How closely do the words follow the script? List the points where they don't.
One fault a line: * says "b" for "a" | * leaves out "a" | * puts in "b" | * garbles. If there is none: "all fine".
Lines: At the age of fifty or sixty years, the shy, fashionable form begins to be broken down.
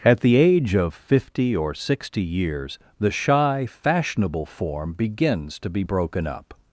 * says "up" for "down"